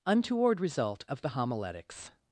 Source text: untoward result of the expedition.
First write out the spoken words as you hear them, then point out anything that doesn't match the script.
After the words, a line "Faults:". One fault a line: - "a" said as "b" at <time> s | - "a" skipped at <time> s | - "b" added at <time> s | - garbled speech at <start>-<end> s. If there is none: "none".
untoward result of the homiletics.
Faults:
- "expedition" said as "homiletics" at 1.3 s